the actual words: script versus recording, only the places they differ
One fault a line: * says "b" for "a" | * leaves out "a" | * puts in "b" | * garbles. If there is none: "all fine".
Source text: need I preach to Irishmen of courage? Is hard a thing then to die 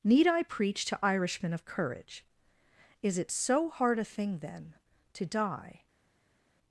* puts in "it so"